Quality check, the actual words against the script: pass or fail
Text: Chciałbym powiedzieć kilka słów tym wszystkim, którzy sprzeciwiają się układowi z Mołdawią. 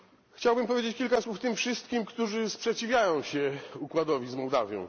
pass